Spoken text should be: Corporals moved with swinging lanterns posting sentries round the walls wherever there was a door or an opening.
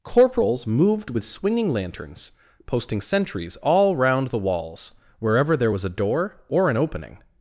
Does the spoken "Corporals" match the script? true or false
true